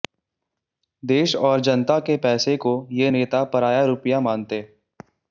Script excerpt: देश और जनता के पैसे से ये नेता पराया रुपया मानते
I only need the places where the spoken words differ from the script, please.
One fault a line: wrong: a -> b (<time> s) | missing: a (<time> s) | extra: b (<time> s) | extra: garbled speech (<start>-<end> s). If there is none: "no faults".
wrong: से -> को (2.6 s)